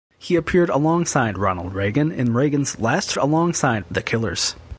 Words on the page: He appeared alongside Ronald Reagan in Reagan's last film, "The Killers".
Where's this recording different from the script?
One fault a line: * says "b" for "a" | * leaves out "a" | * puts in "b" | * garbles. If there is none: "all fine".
* says "alongside" for "film"